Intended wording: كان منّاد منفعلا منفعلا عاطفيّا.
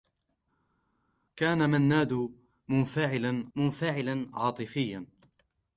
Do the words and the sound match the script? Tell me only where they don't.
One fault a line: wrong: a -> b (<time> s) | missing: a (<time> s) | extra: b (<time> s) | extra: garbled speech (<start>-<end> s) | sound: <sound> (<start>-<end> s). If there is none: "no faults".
no faults